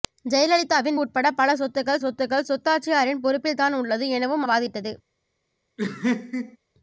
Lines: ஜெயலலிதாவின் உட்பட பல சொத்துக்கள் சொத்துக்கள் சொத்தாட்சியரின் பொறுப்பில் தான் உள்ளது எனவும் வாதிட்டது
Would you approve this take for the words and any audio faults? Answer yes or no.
no